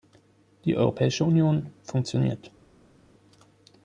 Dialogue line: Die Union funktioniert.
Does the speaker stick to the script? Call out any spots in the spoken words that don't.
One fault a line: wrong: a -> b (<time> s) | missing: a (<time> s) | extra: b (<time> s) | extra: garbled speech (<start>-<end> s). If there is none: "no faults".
extra: Europäische (0.8 s)